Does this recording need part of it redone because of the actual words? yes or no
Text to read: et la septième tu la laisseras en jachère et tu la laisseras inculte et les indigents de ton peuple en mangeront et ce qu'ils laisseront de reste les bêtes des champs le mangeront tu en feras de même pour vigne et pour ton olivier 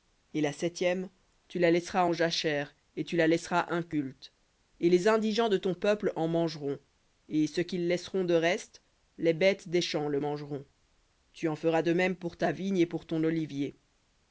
yes